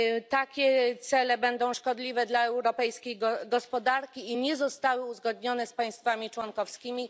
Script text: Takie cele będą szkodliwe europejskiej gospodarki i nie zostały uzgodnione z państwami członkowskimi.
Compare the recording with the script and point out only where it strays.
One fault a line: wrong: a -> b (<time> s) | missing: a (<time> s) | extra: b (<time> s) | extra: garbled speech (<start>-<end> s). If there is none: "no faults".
extra: dla (2.3 s)